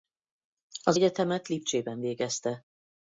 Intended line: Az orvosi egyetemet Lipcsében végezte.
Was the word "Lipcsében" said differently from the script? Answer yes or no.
no